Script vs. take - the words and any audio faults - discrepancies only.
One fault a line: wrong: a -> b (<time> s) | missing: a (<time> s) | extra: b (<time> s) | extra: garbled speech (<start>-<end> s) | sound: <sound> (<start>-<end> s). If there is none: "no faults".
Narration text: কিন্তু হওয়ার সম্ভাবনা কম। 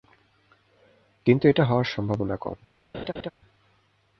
extra: এটা (1.5 s)
sound: laugh (2.9-3.3 s)